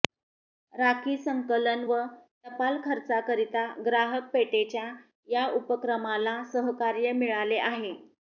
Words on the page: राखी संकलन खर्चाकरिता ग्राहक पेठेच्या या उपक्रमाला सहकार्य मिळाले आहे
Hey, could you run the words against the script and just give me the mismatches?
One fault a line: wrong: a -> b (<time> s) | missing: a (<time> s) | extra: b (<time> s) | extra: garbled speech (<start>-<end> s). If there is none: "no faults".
extra: व टपाल (1.9 s)